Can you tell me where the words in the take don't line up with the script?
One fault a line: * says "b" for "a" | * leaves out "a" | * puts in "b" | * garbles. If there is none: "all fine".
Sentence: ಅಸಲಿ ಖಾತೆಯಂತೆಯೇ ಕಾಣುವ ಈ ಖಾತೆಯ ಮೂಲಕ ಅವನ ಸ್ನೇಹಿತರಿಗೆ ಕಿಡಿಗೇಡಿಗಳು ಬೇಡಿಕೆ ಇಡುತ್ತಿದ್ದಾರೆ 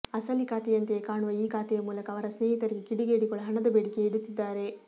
* says "ಅವರ" for "ಅವನ"
* puts in "ಹಣದ"